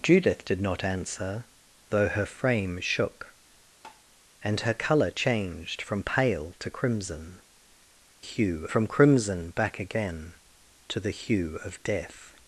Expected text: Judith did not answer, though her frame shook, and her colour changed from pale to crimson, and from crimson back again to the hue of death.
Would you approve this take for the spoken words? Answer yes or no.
no